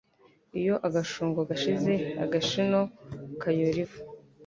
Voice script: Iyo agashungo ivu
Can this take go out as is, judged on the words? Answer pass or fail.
fail